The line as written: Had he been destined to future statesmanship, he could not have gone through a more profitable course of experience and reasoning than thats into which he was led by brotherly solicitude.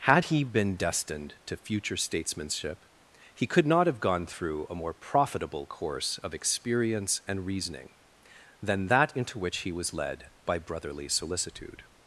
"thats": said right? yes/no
no